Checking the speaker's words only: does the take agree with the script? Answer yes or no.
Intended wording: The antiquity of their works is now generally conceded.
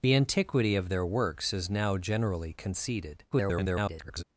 no